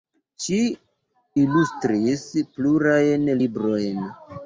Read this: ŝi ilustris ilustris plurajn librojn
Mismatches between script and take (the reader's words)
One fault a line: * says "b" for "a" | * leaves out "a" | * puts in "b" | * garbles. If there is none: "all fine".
* leaves out "ilustris"